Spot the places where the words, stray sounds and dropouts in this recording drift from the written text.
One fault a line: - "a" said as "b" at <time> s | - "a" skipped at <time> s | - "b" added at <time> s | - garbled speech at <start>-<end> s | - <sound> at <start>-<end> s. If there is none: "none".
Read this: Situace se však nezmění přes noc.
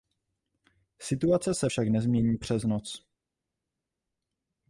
none